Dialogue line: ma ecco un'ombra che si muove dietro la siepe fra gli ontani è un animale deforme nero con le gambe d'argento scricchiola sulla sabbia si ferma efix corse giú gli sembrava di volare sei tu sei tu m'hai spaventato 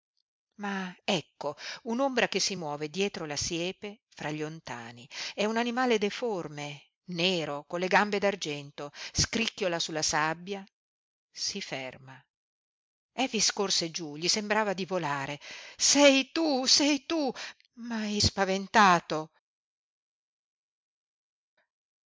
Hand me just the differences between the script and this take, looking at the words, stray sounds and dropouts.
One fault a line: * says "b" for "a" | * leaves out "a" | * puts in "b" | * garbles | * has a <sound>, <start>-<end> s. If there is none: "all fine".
all fine